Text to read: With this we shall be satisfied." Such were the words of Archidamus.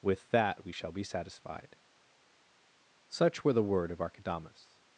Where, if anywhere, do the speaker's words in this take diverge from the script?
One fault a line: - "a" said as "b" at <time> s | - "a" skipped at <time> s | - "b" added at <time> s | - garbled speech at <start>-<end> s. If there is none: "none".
- "this" said as "that" at 0.3 s
- "words" said as "word" at 3.6 s